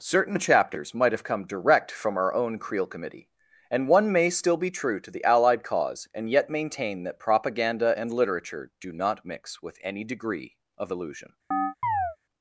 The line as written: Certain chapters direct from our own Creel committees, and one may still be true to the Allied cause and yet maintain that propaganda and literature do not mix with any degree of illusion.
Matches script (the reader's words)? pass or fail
fail